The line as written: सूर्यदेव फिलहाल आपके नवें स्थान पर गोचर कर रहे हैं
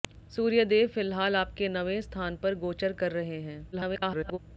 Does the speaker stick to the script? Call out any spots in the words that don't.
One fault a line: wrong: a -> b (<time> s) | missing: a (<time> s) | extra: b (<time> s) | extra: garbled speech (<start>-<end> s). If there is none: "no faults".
extra: garbled speech (3.7-4.4 s)